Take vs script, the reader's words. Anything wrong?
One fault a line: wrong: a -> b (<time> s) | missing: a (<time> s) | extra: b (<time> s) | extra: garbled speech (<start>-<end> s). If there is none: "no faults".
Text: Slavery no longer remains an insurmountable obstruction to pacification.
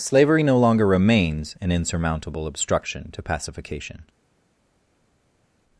no faults